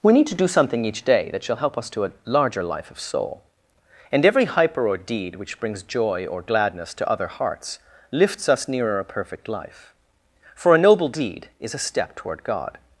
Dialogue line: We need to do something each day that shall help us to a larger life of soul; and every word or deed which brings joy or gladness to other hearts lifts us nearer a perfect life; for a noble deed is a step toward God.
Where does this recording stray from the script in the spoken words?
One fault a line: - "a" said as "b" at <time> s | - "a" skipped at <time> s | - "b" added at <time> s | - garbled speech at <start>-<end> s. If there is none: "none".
- "word" said as "hyper" at 4.5 s